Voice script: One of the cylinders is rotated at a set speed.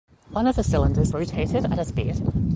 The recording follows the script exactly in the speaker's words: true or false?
false